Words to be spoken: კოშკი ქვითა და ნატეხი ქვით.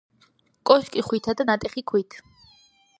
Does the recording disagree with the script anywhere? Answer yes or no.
no